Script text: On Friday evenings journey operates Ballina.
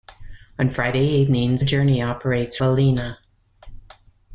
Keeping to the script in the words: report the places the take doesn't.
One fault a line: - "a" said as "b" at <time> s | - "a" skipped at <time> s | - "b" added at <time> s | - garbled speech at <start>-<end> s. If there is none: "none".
none